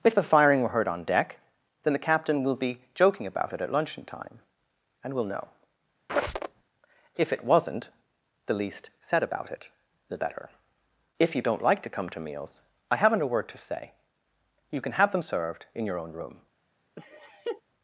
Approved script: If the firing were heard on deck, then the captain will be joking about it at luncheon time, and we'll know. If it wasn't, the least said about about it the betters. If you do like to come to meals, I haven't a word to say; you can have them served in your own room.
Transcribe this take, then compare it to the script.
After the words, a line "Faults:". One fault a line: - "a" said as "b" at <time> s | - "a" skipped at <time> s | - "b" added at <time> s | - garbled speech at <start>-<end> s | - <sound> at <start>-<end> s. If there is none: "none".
If the firing were heard on deck, then the captain will be joking about it at luncheon time, and we'll know. If it wasn't, the least said about it the better. If you don't like to come to meals, I haven't a word to say; you can have them served in your own room.
Faults:
- squeak at 6.1-6.6 s
- "about" skipped at 9.5 s
- "betters" said as "better" at 10.2 s
- "do" said as "don't" at 11.4 s
- laugh at 17.0-17.6 s